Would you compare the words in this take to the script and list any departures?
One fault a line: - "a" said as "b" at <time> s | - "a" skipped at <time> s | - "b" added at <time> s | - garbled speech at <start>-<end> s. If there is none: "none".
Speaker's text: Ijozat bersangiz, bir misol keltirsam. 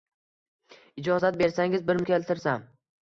- "misol" skipped at 2.0 s